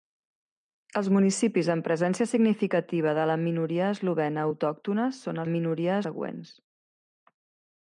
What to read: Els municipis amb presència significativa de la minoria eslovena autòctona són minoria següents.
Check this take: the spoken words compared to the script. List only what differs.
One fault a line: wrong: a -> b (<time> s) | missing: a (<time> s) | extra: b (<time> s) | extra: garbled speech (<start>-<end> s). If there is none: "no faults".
no faults